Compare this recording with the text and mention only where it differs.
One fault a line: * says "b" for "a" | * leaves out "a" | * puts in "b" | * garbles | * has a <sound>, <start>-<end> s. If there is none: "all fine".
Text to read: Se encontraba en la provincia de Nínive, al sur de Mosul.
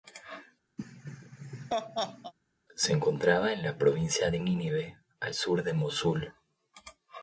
* has a laugh, 0.8-2.3 s